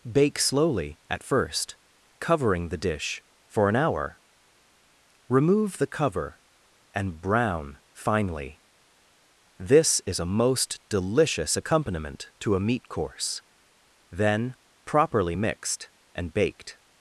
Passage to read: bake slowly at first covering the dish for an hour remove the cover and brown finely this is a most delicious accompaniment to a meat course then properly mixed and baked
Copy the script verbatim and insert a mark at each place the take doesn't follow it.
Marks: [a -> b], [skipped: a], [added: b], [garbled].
bake slowly at first covering the dish for an hour remove the cover and brown finely this is a most delicious accompaniment to a meat course then properly mixed and baked